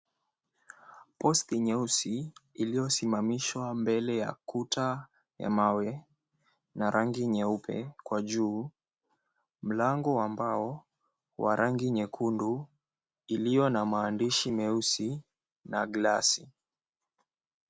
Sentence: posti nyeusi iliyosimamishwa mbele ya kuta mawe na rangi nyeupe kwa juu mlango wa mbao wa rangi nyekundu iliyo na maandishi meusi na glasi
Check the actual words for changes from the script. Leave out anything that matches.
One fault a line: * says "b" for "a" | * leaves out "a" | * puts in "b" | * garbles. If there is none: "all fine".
* puts in "ya"